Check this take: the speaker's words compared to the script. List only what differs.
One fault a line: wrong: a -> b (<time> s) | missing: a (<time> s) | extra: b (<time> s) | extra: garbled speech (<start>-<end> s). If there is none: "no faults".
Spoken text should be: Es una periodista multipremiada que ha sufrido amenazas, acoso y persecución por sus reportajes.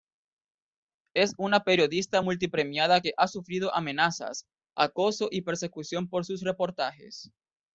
no faults